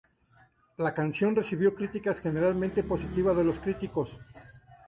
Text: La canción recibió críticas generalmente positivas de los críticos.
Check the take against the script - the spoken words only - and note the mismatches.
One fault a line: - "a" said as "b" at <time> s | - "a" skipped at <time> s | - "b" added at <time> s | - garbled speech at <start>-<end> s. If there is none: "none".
none